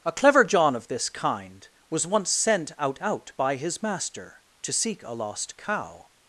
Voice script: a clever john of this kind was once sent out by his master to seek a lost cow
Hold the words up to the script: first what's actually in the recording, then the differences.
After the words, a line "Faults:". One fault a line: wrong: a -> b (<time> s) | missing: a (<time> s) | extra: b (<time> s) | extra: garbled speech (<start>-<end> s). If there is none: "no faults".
a clever john of this kind was once sent out out by his master to seek a lost cow
Faults:
extra: out (3.0 s)